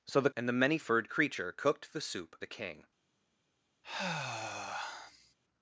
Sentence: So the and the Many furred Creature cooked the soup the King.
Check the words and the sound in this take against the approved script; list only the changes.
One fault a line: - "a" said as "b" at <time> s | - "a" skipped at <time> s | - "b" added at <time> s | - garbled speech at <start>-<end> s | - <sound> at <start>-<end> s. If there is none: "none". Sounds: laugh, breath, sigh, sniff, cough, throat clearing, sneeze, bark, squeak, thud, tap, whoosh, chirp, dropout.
- sigh at 3.8-5.3 s